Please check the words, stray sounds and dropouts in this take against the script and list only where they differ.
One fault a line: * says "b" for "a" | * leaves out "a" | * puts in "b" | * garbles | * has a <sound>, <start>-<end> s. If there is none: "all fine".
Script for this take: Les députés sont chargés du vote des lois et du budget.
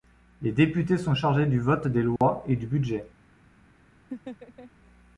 * has a dropout, 2.2-2.2 s
* has a laugh, 4.1-4.7 s